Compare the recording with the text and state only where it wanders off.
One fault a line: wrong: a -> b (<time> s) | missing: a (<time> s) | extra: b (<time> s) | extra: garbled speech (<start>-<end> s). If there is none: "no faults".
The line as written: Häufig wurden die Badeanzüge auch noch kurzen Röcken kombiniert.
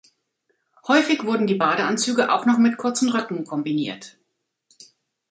extra: mit (2.6 s)